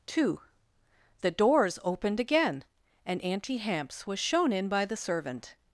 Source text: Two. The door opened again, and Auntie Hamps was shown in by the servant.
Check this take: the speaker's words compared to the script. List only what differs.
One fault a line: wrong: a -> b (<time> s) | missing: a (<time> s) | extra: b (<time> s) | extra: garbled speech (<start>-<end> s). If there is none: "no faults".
wrong: door -> doors (1.3 s)